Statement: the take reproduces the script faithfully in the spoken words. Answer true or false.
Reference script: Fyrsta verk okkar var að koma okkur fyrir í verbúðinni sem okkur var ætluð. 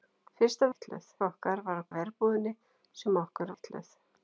false